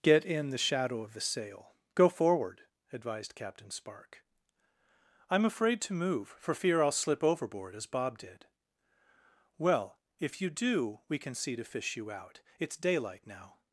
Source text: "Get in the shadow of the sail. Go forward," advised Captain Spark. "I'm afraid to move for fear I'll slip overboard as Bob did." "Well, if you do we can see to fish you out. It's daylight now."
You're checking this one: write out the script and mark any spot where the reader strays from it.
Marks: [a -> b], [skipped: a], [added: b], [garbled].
"Get in the shadow of the sail. Go forward," advised Captain Spark. "I'm afraid to move for fear I'll slip overboard as Bob did." "Well, if you do we can see to fish you out. It's daylight now."